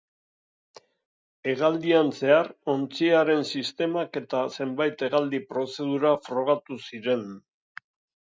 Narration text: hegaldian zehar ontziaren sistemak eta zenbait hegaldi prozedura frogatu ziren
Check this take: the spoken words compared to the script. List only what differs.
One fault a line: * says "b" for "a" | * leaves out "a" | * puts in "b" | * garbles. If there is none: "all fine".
all fine